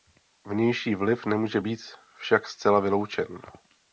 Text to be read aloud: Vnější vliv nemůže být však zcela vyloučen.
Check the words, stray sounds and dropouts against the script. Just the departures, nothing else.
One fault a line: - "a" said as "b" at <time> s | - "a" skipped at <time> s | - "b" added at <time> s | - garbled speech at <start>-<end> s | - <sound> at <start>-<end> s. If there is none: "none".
none